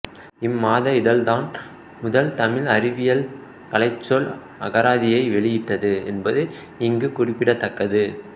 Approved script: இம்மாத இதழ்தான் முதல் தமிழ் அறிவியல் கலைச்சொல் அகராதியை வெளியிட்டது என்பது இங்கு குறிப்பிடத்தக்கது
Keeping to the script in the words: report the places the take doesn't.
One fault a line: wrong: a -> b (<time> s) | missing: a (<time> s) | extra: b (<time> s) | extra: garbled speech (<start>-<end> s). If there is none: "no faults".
no faults